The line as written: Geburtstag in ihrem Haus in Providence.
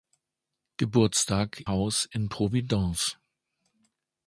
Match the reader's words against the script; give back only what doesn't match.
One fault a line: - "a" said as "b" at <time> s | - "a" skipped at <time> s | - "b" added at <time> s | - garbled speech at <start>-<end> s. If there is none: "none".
- "in ihrem" skipped at 1.6 s